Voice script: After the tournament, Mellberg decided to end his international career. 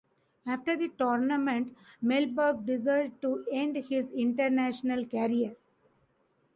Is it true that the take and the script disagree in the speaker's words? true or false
false